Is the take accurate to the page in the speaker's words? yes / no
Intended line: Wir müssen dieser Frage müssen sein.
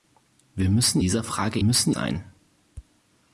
yes